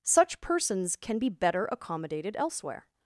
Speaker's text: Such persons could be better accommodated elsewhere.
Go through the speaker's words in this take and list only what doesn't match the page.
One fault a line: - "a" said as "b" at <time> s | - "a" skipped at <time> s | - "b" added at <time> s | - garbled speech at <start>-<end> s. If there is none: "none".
- "could" said as "can" at 0.9 s